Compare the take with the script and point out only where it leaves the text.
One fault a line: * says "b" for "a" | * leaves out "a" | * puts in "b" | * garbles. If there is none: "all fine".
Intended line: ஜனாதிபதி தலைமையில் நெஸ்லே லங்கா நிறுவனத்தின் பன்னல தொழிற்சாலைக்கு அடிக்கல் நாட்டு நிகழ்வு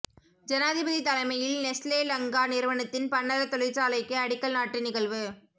all fine